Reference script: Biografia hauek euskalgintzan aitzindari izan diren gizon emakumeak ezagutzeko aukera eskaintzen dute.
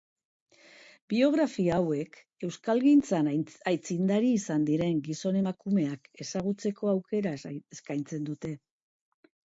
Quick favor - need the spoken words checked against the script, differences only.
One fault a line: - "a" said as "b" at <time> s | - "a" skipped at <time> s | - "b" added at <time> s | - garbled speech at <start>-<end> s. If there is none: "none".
none